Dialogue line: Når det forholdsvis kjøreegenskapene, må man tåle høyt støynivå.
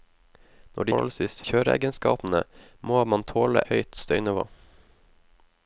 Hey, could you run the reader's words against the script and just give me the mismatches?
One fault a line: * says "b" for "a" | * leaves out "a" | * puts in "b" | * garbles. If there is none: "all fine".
all fine